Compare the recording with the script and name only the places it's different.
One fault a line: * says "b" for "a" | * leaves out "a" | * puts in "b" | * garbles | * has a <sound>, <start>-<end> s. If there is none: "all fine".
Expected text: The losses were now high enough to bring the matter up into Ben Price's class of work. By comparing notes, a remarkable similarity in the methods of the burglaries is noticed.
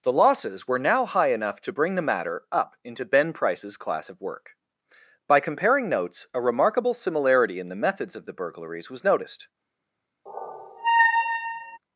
* says "was" for "is"
* has a squeak, 10.3-11.8 s